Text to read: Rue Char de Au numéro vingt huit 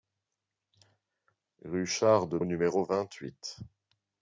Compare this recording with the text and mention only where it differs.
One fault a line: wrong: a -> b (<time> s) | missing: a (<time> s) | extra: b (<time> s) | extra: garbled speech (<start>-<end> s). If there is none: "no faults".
no faults